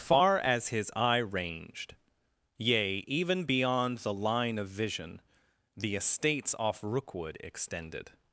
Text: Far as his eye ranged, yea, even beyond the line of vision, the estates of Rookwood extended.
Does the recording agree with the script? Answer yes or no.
no